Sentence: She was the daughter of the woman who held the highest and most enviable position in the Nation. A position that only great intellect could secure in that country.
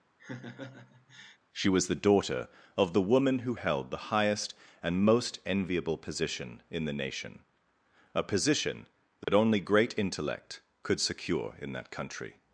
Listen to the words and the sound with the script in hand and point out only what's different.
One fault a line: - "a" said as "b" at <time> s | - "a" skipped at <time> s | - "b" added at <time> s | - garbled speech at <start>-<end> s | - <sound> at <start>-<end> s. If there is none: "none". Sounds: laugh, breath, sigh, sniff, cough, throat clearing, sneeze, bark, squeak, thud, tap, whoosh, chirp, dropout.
- laugh at 0.2-1.4 s
- dropout at 9.2-9.3 s